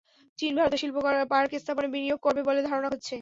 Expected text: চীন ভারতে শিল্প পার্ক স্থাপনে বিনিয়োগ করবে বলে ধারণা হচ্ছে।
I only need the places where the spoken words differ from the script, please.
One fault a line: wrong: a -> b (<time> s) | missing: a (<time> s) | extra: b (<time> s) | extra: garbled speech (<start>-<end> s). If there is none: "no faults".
no faults